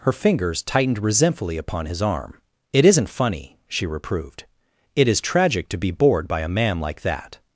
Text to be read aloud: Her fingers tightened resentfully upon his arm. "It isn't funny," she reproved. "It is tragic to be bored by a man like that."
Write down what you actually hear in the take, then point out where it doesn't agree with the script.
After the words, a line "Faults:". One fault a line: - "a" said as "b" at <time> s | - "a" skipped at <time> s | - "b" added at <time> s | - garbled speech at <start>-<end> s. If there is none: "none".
Her fingers tightened resentfully upon his arm. "It isn't funny," she reproved. "It is tragic to be bored by a man like that."
Faults:
none